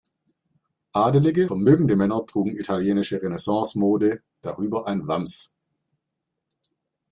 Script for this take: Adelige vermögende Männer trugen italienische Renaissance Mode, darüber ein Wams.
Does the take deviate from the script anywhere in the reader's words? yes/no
no